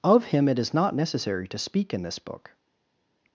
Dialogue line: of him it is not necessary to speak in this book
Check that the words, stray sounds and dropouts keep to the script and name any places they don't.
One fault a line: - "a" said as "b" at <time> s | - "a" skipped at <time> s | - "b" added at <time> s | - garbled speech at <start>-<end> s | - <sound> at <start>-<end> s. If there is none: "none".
none